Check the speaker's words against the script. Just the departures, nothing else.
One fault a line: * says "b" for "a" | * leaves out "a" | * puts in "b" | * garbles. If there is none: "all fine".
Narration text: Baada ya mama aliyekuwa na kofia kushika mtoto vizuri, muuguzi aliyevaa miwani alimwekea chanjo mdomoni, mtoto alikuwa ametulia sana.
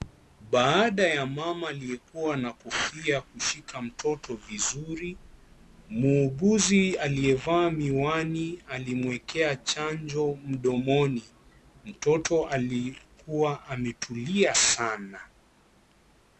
all fine